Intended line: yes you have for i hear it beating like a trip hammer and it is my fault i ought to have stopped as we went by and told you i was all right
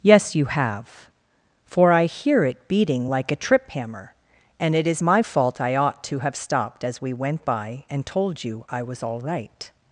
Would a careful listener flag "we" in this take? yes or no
no